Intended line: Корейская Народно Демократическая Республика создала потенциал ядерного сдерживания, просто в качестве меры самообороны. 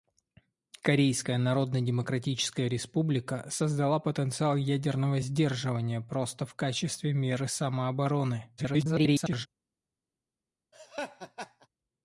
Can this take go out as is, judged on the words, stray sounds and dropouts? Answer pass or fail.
fail